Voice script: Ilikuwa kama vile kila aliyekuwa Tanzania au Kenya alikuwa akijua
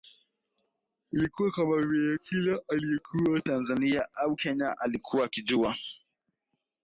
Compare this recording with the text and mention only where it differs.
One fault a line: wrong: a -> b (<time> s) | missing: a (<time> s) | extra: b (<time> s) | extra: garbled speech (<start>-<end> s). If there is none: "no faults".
no faults